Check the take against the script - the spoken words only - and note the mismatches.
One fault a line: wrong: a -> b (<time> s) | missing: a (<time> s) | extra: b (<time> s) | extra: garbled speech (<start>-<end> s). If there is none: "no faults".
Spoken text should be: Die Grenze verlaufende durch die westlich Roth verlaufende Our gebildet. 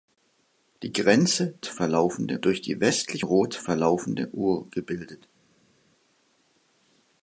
no faults